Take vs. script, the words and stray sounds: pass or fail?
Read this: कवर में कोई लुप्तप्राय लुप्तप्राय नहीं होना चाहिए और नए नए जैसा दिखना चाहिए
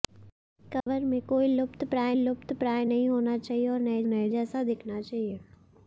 fail